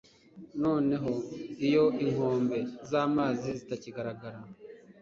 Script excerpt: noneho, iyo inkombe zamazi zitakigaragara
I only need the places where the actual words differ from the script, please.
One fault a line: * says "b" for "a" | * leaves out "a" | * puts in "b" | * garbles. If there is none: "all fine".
all fine